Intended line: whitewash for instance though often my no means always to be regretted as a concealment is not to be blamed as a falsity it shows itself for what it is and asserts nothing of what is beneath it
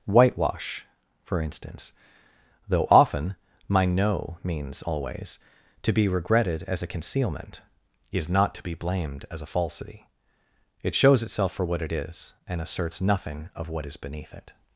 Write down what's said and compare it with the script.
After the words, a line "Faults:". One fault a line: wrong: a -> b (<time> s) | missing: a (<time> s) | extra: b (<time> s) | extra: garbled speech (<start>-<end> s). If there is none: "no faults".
whitewash for instance though often my no means always to be regretted as a concealment is not to be blamed as a falsity it shows itself for what it is and asserts nothing of what is beneath it
Faults:
no faults